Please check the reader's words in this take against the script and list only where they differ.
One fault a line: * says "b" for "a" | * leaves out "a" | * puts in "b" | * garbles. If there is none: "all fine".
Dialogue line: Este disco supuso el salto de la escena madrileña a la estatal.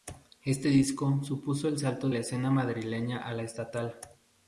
* leaves out "de"